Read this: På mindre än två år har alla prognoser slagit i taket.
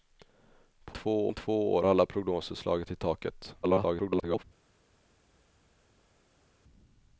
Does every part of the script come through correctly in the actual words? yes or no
no